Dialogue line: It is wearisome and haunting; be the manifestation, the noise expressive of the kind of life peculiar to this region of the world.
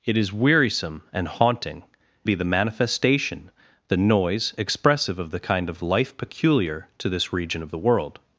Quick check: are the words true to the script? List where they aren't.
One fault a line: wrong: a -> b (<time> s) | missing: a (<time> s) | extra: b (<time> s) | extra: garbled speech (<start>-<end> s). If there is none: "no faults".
no faults